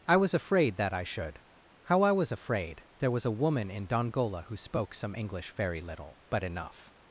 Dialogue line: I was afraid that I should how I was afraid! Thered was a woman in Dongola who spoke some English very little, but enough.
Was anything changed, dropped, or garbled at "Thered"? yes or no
yes